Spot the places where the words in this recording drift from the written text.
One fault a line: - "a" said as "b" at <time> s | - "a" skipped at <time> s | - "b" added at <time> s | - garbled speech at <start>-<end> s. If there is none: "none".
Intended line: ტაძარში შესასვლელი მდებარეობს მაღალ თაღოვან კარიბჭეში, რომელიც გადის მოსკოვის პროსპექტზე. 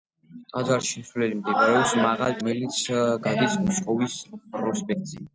- "თაღოვან კარიბჭეში" skipped at 2.4 s